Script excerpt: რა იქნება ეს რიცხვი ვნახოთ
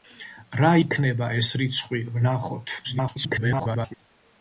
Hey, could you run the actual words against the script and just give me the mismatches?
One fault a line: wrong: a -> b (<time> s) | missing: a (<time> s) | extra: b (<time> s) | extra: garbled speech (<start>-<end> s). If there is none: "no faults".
extra: garbled speech (2.8-3.9 s)